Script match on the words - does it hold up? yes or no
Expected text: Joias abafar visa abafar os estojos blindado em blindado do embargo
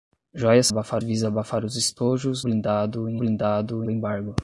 yes